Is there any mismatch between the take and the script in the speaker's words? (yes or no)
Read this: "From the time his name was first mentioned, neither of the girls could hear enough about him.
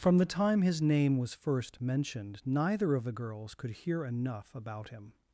no